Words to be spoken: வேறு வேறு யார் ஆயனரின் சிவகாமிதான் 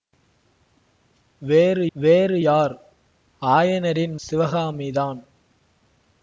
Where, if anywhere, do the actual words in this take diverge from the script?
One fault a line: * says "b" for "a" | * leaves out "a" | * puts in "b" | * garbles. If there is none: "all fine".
all fine